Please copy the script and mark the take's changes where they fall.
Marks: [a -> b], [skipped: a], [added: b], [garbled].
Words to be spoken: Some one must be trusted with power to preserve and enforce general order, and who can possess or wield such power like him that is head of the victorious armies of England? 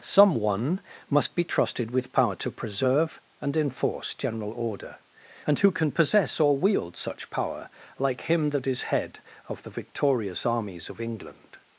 Some one must be trusted with power to preserve and enforce general order, and who can possess or wield such power like him that is head of the victorious armies of England?